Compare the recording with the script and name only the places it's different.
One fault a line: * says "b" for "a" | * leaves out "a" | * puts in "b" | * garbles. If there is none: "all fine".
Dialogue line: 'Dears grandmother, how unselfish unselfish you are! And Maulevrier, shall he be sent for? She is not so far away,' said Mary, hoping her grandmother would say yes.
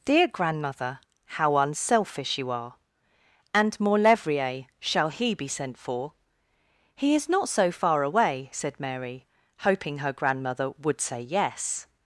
* says "Dear" for "Dears"
* leaves out "unselfish"
* says "He" for "She"